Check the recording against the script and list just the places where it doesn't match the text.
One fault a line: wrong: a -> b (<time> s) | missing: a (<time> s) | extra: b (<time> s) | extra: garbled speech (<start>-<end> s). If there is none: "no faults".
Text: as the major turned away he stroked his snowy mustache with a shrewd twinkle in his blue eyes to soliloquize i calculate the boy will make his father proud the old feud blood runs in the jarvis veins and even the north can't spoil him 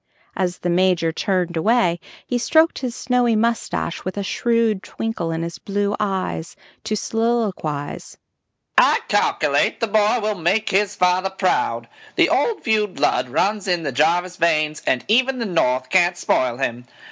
no faults